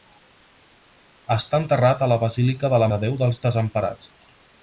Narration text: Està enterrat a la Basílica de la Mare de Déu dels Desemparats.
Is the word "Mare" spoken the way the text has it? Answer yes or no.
no